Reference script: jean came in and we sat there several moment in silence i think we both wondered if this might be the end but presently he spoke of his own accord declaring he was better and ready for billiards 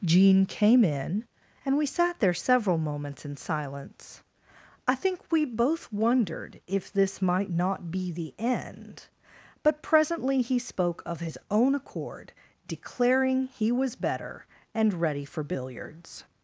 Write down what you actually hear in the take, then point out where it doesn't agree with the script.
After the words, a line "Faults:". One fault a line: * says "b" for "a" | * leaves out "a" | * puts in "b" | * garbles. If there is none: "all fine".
jean came in and we sat there several moments in silence i think we both wondered if this might not be the end but presently he spoke of his own accord declaring he was better and ready for billiards
Faults:
* says "moments" for "moment"
* puts in "not"